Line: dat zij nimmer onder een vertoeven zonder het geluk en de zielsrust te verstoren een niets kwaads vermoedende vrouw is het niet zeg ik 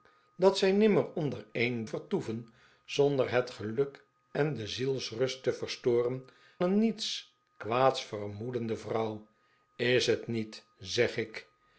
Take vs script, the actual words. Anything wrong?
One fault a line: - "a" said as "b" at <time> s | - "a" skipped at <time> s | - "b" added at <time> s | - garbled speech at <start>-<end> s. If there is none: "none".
none